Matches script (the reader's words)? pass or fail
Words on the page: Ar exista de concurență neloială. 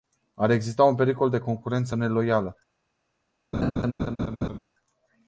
fail